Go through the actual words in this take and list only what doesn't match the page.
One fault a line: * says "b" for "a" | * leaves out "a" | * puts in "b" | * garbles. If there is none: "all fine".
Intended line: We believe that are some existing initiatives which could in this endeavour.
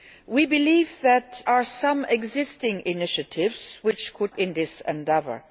all fine